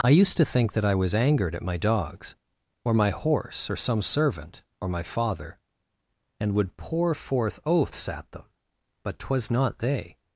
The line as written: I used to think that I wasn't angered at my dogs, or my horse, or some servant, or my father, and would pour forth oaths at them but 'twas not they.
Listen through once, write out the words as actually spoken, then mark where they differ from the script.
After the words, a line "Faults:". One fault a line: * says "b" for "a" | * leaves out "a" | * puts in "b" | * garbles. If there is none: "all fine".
I used to think that I was angered at my dogs, or my horse, or some servant, or my father, and would pour forth oaths at them but 'twas not they.
Faults:
* says "was" for "wasn't"